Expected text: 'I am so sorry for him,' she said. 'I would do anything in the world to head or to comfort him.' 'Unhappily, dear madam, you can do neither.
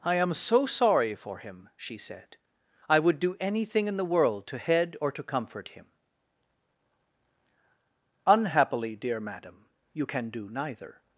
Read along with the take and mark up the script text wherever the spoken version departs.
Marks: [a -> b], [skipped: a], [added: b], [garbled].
'I am so sorry for him,' she said. 'I would do anything in the world to head or to comfort him.' 'Unhappily, dear madam, you can do neither.